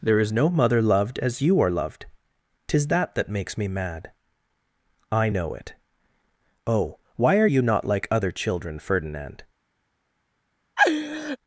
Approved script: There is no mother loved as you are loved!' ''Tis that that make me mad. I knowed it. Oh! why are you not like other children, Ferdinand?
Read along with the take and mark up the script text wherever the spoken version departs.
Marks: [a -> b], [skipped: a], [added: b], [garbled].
There is no mother loved as you are loved!' ''Tis that that [make -> makes] me mad. I [knowed -> know] it. Oh! why are you not like other children, Ferdinand?